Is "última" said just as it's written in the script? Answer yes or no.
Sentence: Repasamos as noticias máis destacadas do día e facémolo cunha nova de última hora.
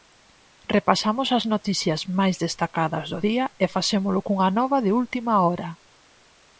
yes